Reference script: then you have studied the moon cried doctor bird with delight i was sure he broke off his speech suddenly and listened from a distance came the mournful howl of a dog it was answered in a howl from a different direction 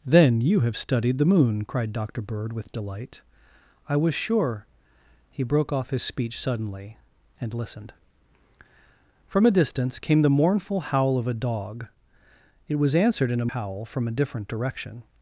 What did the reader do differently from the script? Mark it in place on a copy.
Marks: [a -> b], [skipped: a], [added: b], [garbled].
then you have studied the moon cried doctor bird with delight i was sure he broke off his speech suddenly and listened from a distance came the mournful howl of a dog it was answered in a howl from a different direction